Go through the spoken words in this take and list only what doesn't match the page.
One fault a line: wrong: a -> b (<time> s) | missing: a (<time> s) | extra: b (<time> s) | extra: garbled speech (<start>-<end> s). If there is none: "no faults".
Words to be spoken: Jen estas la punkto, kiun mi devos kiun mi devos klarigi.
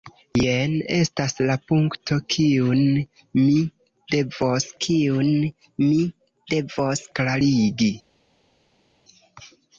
no faults